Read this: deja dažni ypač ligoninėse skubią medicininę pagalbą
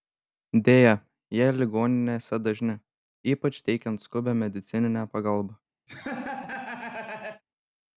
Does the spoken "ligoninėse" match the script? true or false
false